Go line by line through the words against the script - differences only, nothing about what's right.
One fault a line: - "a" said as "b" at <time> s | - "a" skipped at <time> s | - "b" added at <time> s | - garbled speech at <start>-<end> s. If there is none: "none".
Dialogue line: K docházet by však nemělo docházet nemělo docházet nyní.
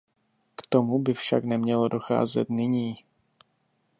- "docházet" said as "tomu" at 0.7 s
- "nemělo docházet" skipped at 2.5 s